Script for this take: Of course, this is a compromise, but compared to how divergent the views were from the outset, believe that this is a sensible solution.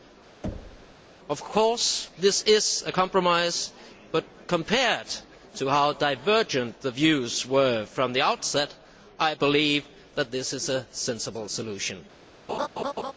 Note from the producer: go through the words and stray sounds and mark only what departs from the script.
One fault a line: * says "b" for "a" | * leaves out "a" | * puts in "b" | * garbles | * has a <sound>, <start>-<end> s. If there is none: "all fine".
* has a thud, 0.4-1.0 s
* puts in "I"
* has a laugh, 12.5-13.1 s